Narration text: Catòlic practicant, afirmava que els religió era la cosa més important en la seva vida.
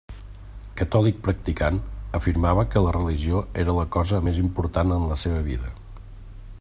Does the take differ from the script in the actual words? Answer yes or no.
yes